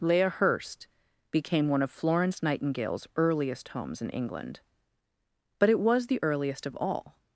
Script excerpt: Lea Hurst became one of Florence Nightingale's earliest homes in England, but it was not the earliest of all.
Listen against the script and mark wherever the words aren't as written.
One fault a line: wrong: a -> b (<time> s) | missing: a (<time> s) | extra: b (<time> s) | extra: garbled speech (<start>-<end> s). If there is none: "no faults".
missing: not (6.1 s)